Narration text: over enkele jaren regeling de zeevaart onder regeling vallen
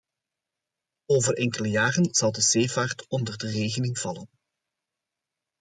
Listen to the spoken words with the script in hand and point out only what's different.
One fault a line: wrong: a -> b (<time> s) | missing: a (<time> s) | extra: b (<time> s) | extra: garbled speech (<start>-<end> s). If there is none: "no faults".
wrong: regeling -> zal (2.1 s)
extra: de (3.4 s)